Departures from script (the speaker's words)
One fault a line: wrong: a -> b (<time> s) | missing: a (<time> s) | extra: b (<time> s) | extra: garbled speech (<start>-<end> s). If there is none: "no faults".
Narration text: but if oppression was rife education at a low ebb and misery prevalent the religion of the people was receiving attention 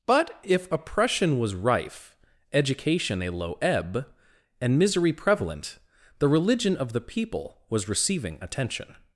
missing: at (3.2 s)